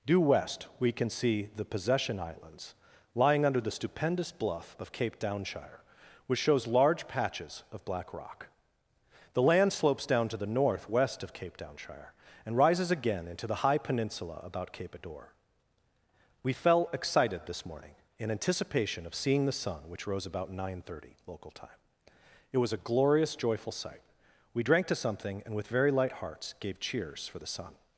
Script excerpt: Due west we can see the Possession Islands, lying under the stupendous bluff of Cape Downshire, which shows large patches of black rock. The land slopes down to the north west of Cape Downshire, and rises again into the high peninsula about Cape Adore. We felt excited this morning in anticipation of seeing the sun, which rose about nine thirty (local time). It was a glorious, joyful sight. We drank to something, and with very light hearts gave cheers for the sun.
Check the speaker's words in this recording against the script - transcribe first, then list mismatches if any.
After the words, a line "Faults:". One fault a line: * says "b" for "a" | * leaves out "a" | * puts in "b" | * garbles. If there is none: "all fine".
Due west we can see the Possession Islands, lying under the stupendous bluff of Cape Downshire, which shows large patches of black rock. The land slopes down to the north west of Cape Downshire, and rises again into the high peninsula about Cape Adore. We fell excited this morning in anticipation of seeing the sun, which rose about nine thirty (local time). It was a glorious, joyful sight. We drank to something, and with very light hearts gave cheers for the sun.
Faults:
* says "fell" for "felt"